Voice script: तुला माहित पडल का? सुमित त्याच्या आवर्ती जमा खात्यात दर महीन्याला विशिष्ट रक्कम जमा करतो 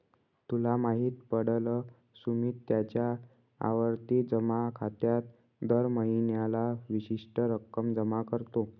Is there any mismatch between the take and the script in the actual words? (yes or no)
yes